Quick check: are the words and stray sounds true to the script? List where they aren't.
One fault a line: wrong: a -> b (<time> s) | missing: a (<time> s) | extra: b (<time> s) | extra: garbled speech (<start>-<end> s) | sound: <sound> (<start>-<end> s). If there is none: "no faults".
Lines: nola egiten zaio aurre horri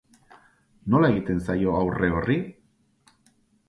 no faults